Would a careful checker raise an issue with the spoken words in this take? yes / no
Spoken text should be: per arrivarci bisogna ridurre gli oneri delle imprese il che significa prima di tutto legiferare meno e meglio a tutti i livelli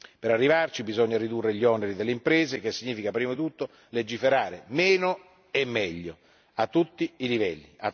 no